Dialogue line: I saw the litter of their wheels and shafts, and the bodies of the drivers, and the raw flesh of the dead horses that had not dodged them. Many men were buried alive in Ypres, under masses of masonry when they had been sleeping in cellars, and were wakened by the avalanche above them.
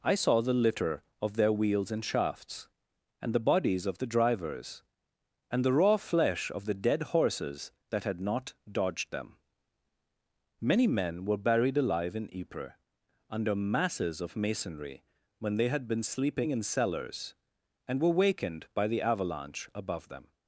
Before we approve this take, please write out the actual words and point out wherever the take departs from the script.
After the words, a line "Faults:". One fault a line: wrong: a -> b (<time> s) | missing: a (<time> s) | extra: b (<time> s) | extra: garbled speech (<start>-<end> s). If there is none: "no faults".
I saw the litter of their wheels and shafts, and the bodies of the drivers, and the raw flesh of the dead horses that had not dodged them. Many men were buried alive in Ypres, under masses of masonry when they had been sleeping in cellars, and were wakened by the avalanche above them.
Faults:
no faults